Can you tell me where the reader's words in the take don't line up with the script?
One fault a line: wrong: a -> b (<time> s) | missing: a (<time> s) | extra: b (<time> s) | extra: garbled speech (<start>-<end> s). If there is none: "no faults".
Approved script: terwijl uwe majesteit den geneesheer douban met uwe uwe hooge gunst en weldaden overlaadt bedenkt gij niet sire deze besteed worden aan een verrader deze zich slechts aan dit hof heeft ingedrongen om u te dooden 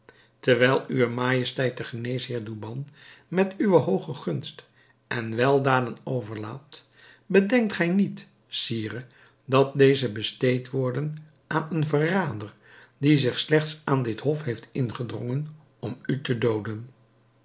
missing: uwe (3.8 s)
extra: dat (9.4 s)
wrong: deze -> die (13.0 s)